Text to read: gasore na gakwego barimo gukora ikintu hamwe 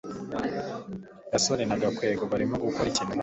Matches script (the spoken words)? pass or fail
pass